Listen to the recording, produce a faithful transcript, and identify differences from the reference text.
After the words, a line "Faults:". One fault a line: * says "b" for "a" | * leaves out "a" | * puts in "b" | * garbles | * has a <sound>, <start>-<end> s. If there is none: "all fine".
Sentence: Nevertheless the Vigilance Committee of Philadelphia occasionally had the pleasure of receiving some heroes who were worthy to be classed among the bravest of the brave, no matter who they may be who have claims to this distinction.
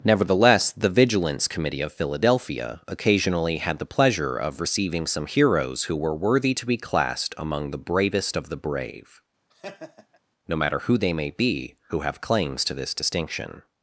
Nevertheless the Vigilance Committee of Philadelphia occasionally had the pleasure of receiving some heroes who were worthy to be classed among the bravest of the brave, no matter who they may be who have claims to this distinction.
Faults:
* has a laugh, 9.5-10.2 s